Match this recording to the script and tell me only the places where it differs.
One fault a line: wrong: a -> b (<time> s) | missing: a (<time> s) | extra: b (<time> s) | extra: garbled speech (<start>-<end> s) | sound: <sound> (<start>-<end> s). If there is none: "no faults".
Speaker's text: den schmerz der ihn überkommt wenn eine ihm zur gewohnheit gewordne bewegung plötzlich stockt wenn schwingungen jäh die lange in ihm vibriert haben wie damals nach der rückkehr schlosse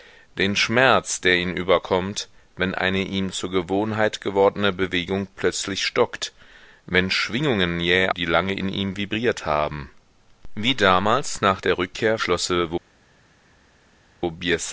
no faults